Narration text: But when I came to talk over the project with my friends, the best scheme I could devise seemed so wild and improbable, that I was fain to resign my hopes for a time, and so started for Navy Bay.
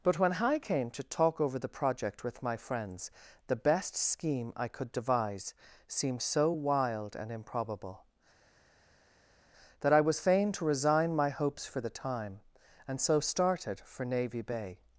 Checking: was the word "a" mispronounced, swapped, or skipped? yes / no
yes